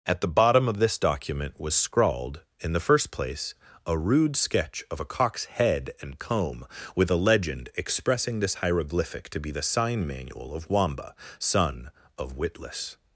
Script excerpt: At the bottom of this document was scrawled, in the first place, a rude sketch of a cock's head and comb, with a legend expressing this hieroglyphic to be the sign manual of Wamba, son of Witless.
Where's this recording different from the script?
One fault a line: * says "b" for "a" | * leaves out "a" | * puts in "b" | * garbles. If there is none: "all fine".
all fine